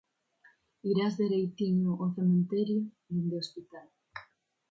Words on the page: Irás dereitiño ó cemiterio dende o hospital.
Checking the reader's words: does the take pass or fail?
pass